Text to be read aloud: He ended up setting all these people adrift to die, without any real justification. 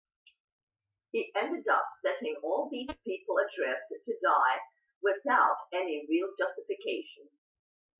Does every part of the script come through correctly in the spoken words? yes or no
yes